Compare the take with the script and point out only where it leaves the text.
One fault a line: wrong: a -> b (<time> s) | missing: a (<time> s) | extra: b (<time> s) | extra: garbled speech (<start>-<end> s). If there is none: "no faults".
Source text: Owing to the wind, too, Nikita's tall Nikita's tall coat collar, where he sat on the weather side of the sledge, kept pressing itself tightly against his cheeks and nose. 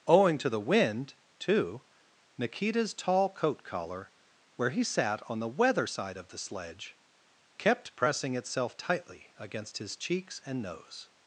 missing: Nikita's tall (3.3 s)